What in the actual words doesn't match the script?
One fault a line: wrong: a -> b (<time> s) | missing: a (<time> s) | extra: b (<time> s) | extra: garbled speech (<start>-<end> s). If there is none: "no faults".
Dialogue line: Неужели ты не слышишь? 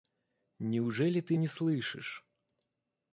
no faults